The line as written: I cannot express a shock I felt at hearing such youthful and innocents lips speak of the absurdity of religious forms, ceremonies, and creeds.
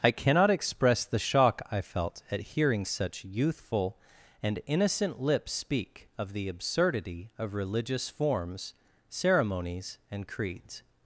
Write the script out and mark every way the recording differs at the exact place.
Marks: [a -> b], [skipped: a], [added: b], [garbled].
I cannot express [a -> the] shock I felt at hearing such youthful and [innocents -> innocent] lips speak of the absurdity of religious forms, ceremonies, and creeds.